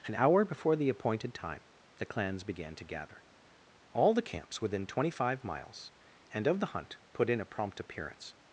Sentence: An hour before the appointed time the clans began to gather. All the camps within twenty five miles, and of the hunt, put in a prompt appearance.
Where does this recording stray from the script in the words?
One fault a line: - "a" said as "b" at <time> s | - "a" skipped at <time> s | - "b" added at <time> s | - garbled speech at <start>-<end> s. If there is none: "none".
none